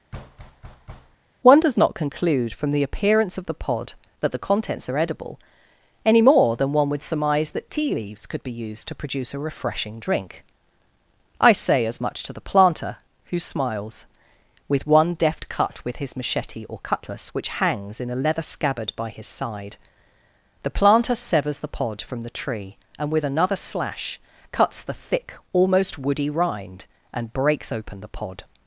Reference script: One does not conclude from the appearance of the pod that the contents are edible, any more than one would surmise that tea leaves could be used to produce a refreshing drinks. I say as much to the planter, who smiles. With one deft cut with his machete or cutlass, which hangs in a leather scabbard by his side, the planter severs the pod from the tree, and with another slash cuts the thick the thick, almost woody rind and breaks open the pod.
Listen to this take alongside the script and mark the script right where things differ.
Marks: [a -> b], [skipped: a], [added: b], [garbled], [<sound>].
[thud] One does not conclude from the appearance of the pod that the contents are edible, any more than one would surmise that tea leaves could be used to produce a refreshing [drinks. -> drink] I say as much to the planter, who smiles. With one deft cut with his machete or cutlass, which hangs in a leather scabbard by his side, the planter severs the pod from the tree, and with another slash cuts the thick [skipped: the thick,] almost woody rind and breaks open the pod.